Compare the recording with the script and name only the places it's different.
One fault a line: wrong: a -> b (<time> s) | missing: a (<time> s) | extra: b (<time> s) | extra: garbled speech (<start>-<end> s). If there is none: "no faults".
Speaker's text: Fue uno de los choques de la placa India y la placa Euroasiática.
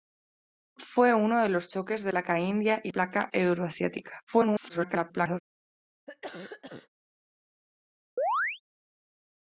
missing: la (2.1 s)
missing: la (2.9 s)
extra: garbled speech (4.3-5.4 s)